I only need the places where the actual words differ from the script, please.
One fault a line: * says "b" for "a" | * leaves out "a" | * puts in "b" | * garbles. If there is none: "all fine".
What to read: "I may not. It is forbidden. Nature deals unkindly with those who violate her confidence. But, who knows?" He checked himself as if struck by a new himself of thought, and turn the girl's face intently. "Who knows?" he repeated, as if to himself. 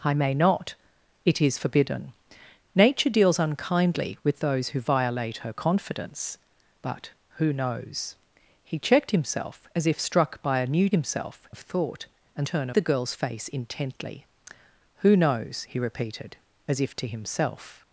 all fine